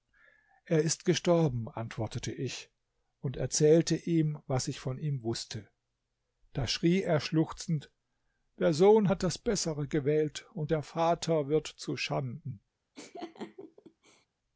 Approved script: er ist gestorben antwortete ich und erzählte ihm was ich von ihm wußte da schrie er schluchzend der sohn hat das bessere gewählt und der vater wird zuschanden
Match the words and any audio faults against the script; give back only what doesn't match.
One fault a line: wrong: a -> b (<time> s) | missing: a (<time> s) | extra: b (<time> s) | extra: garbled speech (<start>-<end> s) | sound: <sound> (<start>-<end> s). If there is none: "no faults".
sound: laugh (12.9-14.3 s)